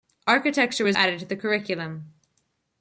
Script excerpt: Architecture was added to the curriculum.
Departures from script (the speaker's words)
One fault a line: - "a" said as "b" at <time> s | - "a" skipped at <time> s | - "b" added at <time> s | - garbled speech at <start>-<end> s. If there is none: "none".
none